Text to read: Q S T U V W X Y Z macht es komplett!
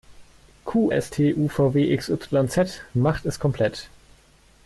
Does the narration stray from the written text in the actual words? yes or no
no